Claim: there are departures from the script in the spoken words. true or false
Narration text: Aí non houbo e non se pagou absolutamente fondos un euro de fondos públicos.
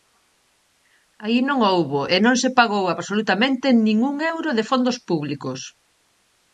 true